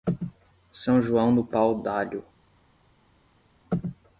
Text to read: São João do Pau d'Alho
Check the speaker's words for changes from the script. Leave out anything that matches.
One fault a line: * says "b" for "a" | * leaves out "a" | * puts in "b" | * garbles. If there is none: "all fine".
all fine